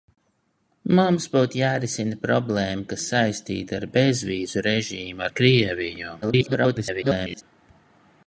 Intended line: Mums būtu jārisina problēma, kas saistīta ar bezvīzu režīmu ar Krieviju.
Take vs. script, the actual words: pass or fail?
fail